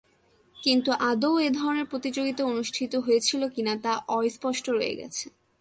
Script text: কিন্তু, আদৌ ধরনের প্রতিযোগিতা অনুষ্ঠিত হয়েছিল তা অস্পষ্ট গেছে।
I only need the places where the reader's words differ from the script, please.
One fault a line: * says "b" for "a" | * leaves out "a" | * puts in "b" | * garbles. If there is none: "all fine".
* puts in "এ"
* puts in "কি-না"
* puts in "রয়ে"